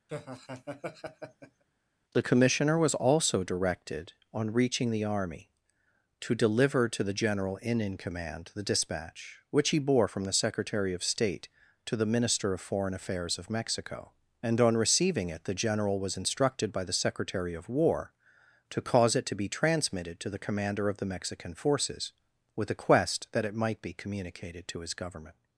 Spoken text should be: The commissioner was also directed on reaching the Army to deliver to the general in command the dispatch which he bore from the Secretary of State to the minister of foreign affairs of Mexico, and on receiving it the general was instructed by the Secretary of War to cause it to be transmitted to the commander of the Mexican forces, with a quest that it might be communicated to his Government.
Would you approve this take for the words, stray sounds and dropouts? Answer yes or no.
no